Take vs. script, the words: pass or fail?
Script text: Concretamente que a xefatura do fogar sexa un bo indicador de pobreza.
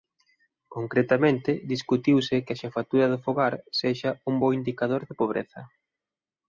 fail